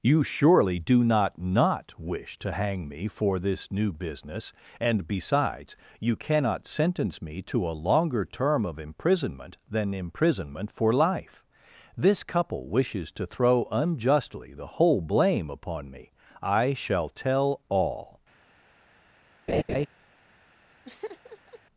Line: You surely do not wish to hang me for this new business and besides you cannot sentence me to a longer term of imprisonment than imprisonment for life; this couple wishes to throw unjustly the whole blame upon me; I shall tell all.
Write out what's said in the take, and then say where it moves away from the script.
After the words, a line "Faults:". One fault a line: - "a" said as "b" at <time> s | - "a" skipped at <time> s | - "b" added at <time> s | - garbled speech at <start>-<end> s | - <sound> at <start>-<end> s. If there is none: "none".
You surely do not not wish to hang me for this new business and besides you cannot sentence me to a longer term of imprisonment than imprisonment for life; this couple wishes to throw unjustly the whole blame upon me; I shall tell all.
Faults:
- "not" added at 1.4 s
- laugh at 19.5-19.9 s
- laugh at 20.8-21.6 s